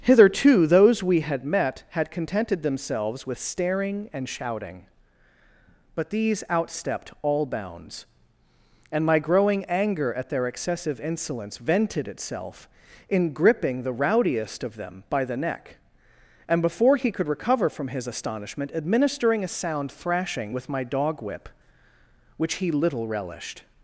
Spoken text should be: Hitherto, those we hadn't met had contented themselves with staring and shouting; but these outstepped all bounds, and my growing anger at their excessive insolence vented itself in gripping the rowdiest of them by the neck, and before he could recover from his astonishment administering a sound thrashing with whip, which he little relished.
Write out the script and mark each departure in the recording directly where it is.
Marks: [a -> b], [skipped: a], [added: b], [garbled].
Hitherto, those we [hadn't -> had] met had contented themselves with staring and shouting; but these outstepped all bounds, and my growing anger at their excessive insolence vented itself in gripping the rowdiest of them by the neck, and before he could recover from his astonishment administering a sound thrashing with [added: my dog] whip, which he little relished.